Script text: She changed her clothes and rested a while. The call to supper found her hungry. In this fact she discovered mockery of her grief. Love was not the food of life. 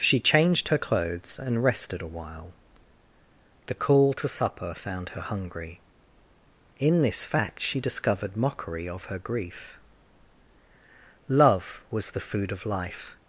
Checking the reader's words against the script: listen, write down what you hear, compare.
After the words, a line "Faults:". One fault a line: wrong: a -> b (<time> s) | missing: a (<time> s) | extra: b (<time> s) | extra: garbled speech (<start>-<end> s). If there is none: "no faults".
She changed her clothes and rested a while. The call to supper found her hungry. In this fact she discovered mockery of her grief. Love was the food of life.
Faults:
missing: not (12.1 s)